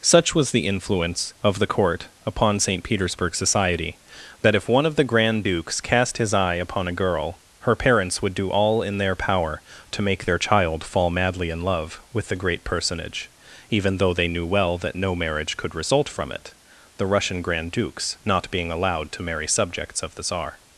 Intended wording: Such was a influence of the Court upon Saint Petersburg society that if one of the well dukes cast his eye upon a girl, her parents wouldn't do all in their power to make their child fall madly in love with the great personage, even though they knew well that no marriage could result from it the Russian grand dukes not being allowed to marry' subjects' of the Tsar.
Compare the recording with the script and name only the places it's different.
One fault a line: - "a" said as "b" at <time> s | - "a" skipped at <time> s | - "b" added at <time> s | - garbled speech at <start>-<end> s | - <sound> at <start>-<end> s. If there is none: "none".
- "a" said as "the" at 0.5 s
- "well" said as "grand" at 5.0 s
- "wouldn't" said as "would" at 8.2 s